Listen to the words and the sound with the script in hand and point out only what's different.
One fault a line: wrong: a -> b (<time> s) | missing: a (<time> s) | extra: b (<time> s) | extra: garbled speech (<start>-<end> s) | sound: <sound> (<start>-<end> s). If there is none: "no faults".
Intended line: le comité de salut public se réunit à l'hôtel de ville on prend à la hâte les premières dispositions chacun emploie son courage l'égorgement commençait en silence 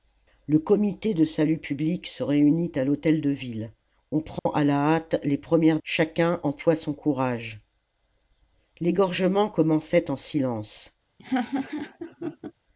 sound: dropout (4.4-4.5 s)
missing: dispositions (5.8 s)
sound: laugh (11.2-12.5 s)